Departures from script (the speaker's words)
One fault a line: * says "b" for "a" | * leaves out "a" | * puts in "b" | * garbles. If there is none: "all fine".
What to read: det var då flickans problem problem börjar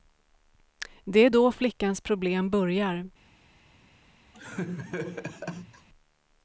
* says "är" for "var"
* leaves out "problem"